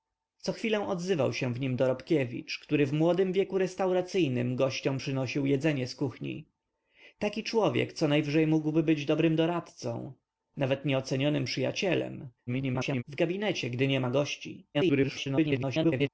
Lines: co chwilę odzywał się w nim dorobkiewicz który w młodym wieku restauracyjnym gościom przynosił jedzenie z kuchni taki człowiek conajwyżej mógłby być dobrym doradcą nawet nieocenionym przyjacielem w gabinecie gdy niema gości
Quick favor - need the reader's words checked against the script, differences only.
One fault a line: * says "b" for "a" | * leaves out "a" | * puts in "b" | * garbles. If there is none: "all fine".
* garbles
* garbles